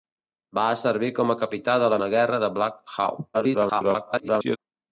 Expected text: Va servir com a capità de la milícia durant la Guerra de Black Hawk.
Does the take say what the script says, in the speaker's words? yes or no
no